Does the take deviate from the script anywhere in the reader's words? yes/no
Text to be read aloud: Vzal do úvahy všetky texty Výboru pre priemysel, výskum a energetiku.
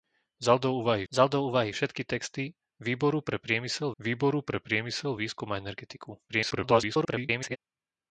yes